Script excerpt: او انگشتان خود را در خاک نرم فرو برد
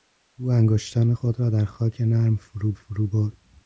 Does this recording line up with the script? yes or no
no